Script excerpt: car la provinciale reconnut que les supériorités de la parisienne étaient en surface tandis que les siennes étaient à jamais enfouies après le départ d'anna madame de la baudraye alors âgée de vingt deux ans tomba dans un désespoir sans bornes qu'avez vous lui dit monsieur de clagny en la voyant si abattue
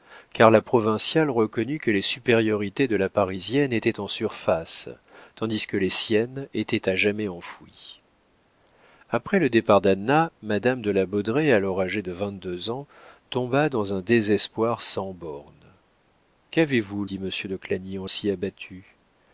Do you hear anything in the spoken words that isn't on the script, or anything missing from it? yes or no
yes